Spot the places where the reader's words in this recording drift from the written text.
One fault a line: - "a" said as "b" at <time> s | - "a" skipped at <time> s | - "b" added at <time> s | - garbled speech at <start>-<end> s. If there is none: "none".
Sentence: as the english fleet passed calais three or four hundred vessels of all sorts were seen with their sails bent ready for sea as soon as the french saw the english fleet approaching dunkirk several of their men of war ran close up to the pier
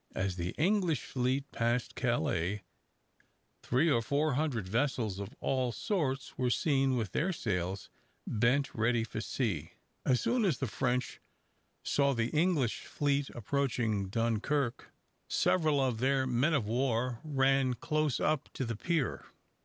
none